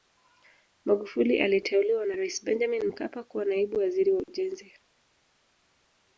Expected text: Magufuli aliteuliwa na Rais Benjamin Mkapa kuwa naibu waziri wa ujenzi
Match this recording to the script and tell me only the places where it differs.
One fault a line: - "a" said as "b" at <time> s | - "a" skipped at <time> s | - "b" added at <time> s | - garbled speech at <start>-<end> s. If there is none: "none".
none